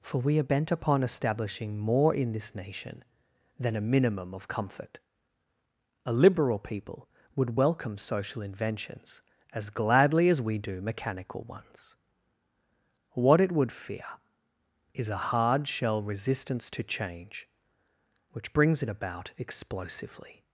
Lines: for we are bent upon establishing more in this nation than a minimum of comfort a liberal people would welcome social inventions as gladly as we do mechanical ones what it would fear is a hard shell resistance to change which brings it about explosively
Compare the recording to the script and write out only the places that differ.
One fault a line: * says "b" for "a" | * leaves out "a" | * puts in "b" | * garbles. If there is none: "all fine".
all fine